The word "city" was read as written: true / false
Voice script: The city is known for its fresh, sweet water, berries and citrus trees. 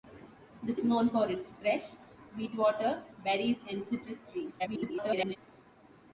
false